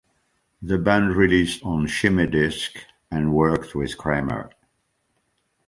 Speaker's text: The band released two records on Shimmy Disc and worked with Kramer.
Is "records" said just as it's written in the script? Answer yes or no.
no